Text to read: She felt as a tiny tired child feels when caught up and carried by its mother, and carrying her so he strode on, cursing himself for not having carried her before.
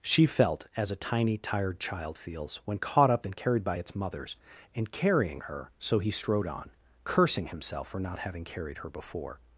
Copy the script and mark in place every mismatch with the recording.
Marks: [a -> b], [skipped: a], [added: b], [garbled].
She felt as a tiny tired child feels when caught up and carried by its [mother, -> mothers] and carrying her so he strode on, cursing himself for not having carried her before.